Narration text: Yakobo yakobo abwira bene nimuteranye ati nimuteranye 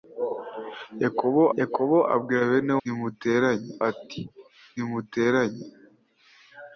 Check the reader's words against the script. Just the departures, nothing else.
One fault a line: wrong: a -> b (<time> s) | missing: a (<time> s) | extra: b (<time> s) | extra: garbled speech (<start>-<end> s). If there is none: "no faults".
no faults